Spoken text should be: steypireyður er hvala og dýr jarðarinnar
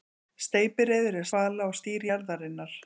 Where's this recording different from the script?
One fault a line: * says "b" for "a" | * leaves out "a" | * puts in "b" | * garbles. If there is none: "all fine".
all fine